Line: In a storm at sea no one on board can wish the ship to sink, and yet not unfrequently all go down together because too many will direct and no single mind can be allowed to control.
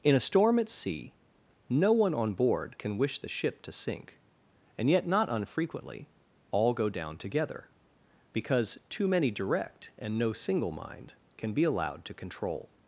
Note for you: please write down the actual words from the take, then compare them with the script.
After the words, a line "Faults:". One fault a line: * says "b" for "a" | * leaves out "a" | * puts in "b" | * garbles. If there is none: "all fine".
In a storm at sea no one on board can wish the ship to sink, and yet not unfrequently all go down together because too many direct and no single mind can be allowed to control.
Faults:
* leaves out "will"